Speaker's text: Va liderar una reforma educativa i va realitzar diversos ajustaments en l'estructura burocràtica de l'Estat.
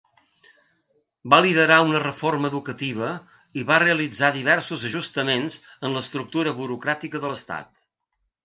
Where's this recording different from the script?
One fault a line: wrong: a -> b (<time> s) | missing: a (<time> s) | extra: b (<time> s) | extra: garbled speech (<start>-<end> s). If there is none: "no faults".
no faults